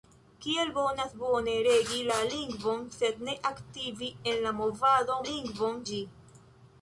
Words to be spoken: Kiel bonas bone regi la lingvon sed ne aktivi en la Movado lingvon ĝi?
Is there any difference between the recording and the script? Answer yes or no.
no